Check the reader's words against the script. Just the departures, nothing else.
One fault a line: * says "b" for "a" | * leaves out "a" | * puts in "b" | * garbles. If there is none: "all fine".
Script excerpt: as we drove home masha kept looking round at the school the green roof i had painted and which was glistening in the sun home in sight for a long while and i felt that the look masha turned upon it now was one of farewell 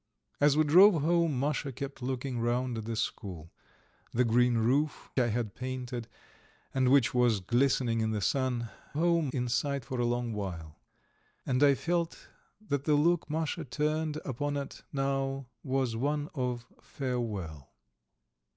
all fine